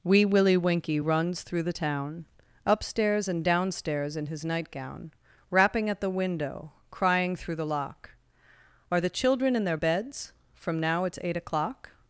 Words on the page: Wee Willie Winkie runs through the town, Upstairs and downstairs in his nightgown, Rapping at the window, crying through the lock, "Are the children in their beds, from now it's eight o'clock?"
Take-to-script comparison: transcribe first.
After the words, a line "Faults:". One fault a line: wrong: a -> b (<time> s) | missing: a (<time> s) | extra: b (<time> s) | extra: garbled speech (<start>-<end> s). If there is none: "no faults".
Wee Willie Winkie runs through the town, Upstairs and downstairs in his nightgown, Rapping at the window, crying through the lock, "Are the children in their beds, from now it's eight o'clock?"
Faults:
no faults